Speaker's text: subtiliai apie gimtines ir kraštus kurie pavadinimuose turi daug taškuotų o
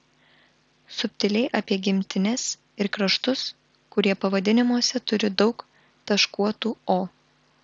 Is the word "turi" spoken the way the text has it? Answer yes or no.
yes